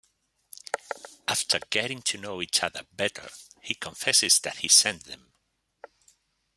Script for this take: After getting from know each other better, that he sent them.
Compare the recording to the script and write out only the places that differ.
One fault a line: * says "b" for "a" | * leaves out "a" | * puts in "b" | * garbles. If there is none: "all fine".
* says "to" for "from"
* puts in "he confesses"